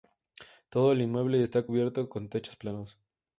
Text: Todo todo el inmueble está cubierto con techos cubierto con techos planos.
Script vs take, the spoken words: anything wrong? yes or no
yes